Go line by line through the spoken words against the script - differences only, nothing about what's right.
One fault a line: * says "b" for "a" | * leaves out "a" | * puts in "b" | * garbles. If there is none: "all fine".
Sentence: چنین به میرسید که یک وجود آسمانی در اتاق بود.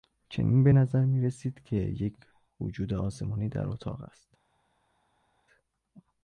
* puts in "نظر"
* says "است" for "بود"